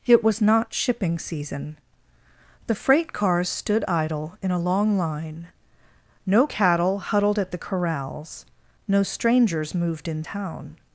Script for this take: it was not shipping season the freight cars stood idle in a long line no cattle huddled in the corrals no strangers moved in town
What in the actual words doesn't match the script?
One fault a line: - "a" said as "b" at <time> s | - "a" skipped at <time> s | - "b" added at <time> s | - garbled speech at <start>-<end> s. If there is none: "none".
- "in" said as "at" at 7.4 s